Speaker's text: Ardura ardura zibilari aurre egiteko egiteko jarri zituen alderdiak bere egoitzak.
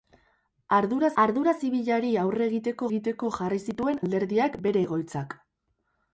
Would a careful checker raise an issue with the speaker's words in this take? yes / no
no